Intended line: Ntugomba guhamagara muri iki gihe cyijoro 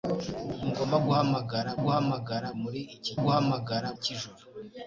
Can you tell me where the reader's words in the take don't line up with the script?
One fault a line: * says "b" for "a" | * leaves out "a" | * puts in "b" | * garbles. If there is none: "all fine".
* puts in "guhamagara"
* says "guhamagara" for "gihe"